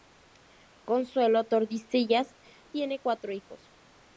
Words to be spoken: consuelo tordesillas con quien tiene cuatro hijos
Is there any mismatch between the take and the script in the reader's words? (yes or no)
yes